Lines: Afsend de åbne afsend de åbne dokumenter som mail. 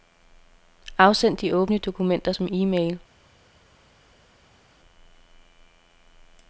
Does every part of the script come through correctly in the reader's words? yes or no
no